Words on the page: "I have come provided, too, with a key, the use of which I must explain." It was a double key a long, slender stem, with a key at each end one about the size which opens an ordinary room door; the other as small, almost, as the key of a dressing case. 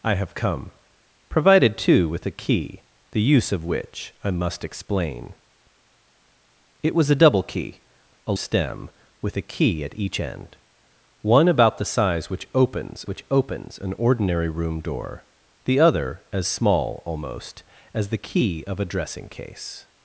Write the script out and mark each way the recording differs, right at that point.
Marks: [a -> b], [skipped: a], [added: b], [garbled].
"I have come provided, too, with a key, the use of which I must explain." It was a double key a [skipped: long, slender] stem, with a key at each end one about the size which opens [added: which opens] an ordinary room door; the other as small, almost, as the key of a dressing case.